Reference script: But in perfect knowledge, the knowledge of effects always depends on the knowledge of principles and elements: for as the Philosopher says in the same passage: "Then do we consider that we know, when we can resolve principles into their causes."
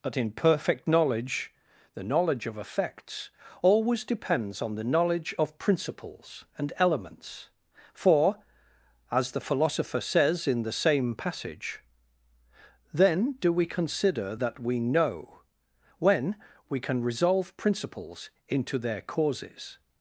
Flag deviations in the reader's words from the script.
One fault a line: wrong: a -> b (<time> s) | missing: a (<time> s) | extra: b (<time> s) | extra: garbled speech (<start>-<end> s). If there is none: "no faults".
no faults